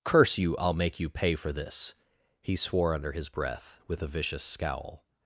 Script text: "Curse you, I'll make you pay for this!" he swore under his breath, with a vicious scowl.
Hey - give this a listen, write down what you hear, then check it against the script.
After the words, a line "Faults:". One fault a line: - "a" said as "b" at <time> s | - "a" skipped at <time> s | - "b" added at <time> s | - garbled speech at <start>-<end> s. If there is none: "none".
"Curse you, I'll make you pay for this!" he swore under his breath, with a vicious scowl.
Faults:
none